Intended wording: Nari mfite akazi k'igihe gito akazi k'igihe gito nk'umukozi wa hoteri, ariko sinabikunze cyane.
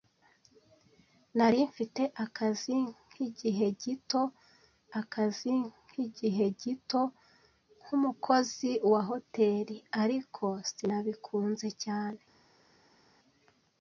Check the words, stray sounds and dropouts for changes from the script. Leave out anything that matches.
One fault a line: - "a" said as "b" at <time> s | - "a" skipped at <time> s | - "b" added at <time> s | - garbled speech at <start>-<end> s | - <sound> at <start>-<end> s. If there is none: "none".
none